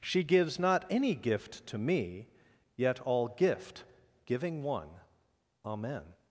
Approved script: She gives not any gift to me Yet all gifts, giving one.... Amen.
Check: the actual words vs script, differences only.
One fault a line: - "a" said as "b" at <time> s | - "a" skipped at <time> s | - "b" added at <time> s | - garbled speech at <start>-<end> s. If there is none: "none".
- "gifts" said as "gift" at 3.3 s